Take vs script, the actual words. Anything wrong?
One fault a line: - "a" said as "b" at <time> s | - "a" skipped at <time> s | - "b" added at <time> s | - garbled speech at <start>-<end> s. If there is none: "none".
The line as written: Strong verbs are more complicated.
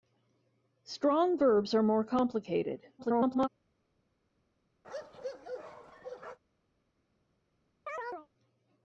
- garbled speech at 3.0-3.5 s